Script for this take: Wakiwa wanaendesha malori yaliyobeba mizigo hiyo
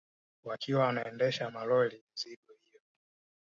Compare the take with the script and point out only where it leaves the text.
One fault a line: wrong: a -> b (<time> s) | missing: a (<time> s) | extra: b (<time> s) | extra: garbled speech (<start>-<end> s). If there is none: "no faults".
missing: yaliyobeba (2.0 s)